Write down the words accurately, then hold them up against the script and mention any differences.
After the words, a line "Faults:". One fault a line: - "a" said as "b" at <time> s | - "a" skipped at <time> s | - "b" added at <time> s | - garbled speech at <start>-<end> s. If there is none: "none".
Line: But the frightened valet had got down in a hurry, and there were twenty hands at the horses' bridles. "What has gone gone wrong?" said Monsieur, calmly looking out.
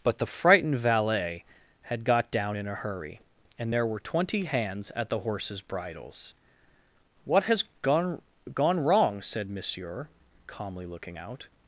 But the frightened valet had got down in a hurry, and there were twenty hands at the horses' bridles. "What has gone gone wrong?" said Monsieur, calmly looking out.
Faults:
none